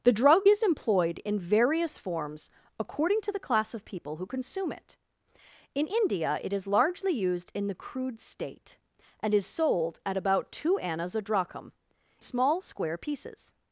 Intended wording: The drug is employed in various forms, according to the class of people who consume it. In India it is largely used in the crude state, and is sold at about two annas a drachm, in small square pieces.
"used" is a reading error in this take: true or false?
false